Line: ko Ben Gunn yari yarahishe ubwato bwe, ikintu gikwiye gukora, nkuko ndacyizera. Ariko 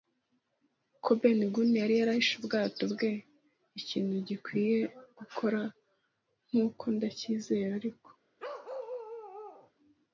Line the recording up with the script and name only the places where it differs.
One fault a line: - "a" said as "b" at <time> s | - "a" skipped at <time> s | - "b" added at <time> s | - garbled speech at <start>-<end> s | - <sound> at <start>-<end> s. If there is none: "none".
- bark at 8.4-9.7 s